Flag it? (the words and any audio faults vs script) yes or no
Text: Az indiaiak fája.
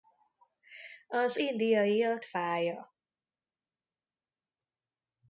no